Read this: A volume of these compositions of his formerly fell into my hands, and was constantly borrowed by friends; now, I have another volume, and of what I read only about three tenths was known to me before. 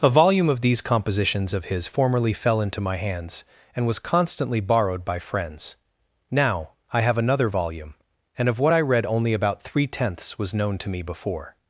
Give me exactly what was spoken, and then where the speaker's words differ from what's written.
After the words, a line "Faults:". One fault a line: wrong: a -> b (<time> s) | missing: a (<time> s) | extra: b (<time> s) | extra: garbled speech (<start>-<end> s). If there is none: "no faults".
A volume of these compositions of his formerly fell into my hands, and was constantly borrowed by friends; now, I have another volume, and of what I read only about three tenths was known to me before.
Faults:
no faults